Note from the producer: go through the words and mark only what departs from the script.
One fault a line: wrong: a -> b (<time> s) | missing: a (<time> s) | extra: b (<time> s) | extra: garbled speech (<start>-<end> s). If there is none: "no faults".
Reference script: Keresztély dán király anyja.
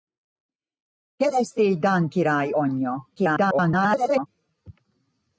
extra: garbled speech (3.2-4.3 s)